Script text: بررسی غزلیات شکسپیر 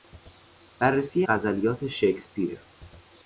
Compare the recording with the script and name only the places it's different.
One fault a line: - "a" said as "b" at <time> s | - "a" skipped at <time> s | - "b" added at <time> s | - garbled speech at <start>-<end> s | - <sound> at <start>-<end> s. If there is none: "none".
none